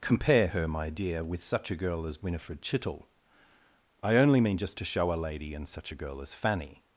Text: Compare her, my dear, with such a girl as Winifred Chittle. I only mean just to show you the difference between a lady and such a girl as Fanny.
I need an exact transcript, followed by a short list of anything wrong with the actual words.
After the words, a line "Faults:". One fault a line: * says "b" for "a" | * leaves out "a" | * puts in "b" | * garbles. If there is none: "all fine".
Compare her, my dear, with such a girl as Winifred Chittle. I only mean just to show a lady and such a girl as Fanny.
Faults:
* leaves out "you the difference between"